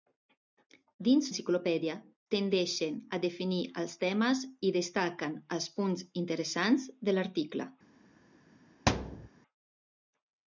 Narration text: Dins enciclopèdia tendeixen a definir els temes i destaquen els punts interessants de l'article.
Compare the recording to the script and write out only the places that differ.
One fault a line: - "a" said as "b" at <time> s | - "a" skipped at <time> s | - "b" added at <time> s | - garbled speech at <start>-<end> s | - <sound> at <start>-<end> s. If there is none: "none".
- thud at 8.9-9.3 s